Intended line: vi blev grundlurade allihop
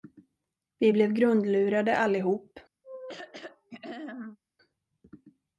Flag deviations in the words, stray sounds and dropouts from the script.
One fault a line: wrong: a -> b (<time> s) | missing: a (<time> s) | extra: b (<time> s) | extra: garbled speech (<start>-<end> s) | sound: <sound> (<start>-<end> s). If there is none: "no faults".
sound: throat clearing (2.8-4.4 s)